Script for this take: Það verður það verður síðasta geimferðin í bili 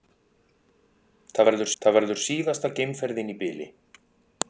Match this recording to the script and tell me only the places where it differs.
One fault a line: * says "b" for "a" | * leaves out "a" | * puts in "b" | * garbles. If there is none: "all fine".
all fine